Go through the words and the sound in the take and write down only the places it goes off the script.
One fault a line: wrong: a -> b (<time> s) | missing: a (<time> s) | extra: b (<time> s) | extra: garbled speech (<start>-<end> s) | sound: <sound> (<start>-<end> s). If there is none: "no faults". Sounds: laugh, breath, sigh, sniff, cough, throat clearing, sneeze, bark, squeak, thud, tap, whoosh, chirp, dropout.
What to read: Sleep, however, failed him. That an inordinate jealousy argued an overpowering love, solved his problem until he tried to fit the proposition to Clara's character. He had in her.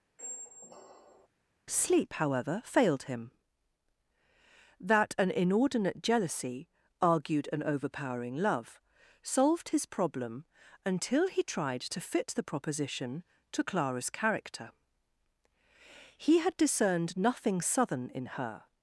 sound: squeak (0.2-1.3 s)
extra: discerned nothing southern (16.6 s)